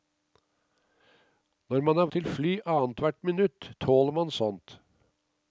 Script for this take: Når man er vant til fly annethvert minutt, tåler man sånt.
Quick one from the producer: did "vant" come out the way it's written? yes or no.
no